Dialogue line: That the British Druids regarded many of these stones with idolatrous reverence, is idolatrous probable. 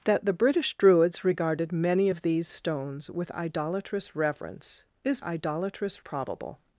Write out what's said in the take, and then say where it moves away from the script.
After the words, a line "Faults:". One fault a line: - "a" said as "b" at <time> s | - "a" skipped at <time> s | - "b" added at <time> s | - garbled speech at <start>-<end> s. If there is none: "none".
That the British Druids regarded many of these stones with idolatrous reverence, is idolatrous probable.
Faults:
none